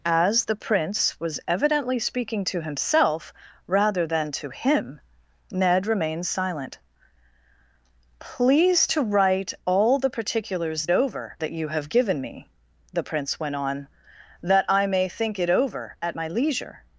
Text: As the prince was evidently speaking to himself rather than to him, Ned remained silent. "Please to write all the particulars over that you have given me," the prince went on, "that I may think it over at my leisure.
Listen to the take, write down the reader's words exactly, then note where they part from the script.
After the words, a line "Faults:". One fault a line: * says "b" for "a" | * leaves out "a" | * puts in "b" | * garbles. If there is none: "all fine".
As the prince was evidently speaking to himself rather than to him, Ned remained silent. "Please to write all the particulars over that you have given me," the prince went on, "that I may think it over at my leisure.
Faults:
all fine